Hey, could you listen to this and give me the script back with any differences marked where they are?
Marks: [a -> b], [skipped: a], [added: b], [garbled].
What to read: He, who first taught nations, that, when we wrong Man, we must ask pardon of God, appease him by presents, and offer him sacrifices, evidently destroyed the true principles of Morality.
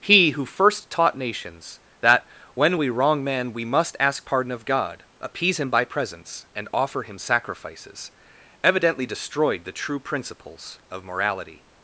He, who first taught nations, that, when we wrong Man, we must ask pardon of God, appease him by presents, and offer him sacrifices, evidently destroyed the true principles of Morality.